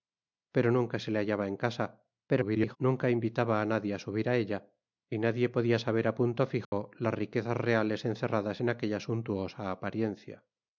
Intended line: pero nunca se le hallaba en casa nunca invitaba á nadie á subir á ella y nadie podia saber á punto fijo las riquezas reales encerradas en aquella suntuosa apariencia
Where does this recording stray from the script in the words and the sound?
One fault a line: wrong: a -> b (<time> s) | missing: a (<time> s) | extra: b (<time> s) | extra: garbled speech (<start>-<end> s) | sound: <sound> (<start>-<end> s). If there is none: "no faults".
extra: garbled speech (2.3-2.8 s)
sound: dropout (6.6-6.7 s)